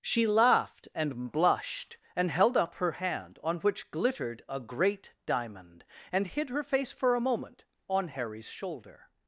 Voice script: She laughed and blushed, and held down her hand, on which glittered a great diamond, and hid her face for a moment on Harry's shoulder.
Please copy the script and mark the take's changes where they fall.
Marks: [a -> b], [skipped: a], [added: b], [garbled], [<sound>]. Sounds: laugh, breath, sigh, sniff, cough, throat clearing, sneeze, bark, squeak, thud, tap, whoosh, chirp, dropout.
She laughed and blushed, and held [down -> up] her hand, on which glittered a great diamond, and hid her face for a moment on Harry's shoulder.